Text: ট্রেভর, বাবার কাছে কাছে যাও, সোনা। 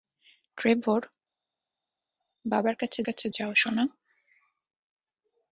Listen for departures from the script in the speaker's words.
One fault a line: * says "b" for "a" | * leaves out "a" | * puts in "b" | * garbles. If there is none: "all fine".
all fine